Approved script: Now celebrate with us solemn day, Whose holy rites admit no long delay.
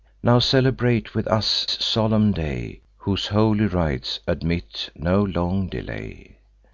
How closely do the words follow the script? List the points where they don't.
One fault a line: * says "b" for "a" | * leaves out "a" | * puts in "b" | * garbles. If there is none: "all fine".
all fine